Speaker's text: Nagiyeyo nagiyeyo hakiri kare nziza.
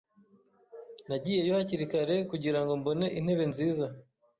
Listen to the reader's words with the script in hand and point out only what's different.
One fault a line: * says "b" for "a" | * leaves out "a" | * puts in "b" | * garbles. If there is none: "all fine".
* leaves out "nagiyeyo"
* puts in "kugirango mbone intebe"